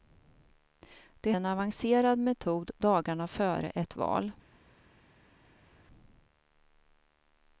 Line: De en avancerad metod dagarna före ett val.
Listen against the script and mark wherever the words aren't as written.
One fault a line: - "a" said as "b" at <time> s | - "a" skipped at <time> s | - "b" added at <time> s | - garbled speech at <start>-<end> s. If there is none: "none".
none